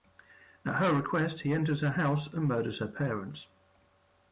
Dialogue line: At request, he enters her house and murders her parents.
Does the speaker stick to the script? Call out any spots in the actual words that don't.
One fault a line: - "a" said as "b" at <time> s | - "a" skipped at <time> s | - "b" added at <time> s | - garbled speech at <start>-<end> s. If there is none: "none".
- "her" added at 0.8 s